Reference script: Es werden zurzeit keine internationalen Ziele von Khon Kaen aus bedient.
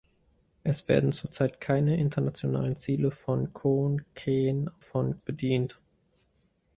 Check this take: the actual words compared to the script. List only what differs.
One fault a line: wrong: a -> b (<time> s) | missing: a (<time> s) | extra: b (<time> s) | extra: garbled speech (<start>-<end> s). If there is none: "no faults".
wrong: aus -> von (4.8 s)